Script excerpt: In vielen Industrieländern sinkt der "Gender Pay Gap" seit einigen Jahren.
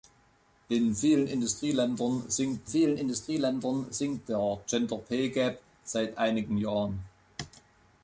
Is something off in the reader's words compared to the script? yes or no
yes